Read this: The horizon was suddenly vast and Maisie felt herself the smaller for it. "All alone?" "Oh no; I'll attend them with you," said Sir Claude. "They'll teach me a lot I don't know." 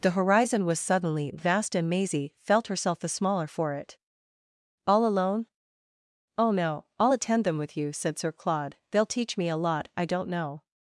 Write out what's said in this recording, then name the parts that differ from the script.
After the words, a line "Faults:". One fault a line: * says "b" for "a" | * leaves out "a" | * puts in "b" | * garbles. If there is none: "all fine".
The horizon was suddenly vast and Maisie felt herself the smaller for it. "All alone?" "Oh no; I'll attend them with you," said Sir Claude. "They'll teach me a lot I don't know."
Faults:
all fine